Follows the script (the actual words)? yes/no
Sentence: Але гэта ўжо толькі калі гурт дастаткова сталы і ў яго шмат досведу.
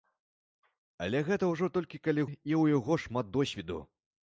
no